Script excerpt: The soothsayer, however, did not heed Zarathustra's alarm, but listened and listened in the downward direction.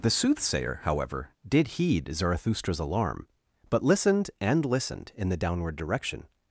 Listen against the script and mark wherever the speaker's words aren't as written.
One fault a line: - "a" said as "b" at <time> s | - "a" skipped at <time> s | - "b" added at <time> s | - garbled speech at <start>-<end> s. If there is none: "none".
- "not" skipped at 1.8 s